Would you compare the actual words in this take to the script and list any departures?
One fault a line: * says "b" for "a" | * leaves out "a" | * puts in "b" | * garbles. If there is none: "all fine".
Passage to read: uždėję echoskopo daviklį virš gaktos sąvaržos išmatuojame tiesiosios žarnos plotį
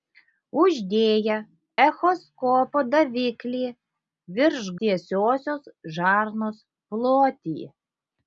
* leaves out "gaktos sąvaržos išmatuojame"